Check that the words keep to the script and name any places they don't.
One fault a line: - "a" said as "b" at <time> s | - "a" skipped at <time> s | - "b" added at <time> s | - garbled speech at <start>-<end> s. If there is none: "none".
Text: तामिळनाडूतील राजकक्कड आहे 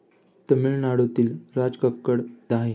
none